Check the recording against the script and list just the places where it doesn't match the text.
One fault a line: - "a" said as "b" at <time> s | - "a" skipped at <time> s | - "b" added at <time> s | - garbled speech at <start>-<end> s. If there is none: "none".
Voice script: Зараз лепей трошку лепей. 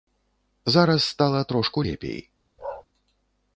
- "лепей" said as "стала" at 1.0 s